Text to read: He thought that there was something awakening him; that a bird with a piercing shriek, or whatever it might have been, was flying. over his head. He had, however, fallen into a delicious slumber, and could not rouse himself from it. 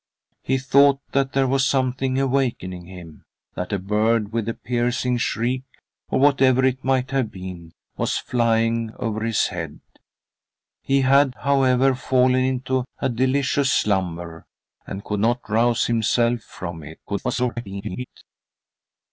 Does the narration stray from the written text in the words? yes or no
yes